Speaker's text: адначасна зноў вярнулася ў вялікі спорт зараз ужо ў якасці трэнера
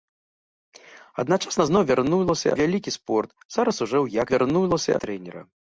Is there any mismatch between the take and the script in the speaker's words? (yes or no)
yes